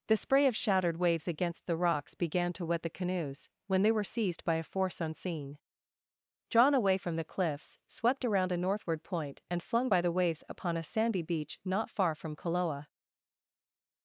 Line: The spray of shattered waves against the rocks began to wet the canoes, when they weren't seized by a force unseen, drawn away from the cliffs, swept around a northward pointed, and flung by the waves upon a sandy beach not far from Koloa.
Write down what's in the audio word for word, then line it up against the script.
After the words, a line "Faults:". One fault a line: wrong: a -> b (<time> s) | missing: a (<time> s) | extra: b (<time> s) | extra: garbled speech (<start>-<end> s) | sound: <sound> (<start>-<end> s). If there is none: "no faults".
The spray of shattered waves against the rocks began to wet the canoes, when they were seized by a force unseen, drawn away from the cliffs, swept around a northward point, and flung by the waves upon a sandy beach not far from Koloa.
Faults:
wrong: weren't -> were (3.9 s)
wrong: pointed -> point (9.0 s)